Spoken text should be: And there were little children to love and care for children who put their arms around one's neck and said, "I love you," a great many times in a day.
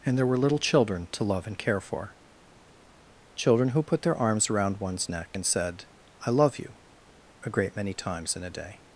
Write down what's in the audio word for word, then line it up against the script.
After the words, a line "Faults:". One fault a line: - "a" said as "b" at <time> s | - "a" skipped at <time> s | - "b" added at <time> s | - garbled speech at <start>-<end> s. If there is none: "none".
And there were little children to love and care for children who put their arms around one's neck and said, "I love you," a great many times in a day.
Faults:
none